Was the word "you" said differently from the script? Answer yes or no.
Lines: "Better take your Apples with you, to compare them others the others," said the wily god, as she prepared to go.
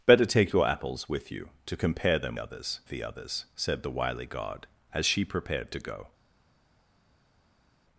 no